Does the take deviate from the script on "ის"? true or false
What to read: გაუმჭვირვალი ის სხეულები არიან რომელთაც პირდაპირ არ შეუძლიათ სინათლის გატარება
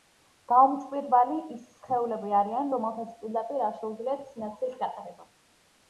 false